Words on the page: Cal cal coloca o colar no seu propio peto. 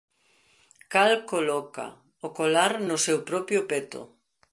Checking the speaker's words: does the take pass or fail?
fail